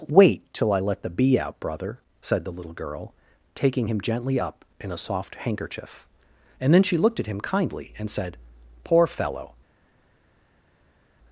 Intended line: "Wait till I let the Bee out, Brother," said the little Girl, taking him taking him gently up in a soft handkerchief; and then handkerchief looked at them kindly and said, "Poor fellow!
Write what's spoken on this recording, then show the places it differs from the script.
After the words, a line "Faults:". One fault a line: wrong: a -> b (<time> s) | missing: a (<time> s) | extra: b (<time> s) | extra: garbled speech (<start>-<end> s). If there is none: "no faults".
"Wait till I let the Bee out, Brother," said the little Girl, taking him gently up in a soft handkerchief; and then she looked at him kindly and said, "Poor fellow!
Faults:
missing: taking him (4.0 s)
wrong: handkerchief -> she (6.8 s)
wrong: them -> him (7.3 s)